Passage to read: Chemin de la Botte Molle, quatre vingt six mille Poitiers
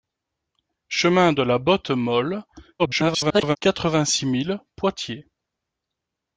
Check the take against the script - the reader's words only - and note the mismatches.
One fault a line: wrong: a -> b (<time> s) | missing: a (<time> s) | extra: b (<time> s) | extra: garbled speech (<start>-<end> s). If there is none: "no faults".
extra: garbled speech (2.8-3.6 s)